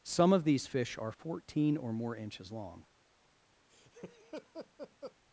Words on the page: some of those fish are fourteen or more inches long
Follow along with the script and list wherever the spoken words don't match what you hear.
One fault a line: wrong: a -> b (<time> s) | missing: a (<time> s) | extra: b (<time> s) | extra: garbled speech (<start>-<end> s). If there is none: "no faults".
wrong: those -> these (0.4 s)